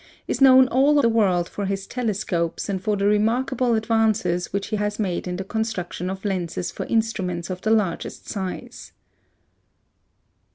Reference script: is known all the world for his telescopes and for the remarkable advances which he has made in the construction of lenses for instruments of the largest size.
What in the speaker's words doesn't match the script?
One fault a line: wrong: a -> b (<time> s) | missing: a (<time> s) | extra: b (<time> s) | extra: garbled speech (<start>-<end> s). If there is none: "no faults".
no faults